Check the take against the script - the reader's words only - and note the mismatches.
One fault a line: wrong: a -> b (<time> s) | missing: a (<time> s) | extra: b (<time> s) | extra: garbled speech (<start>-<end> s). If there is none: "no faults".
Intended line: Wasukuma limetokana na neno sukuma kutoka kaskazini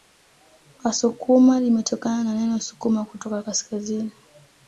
no faults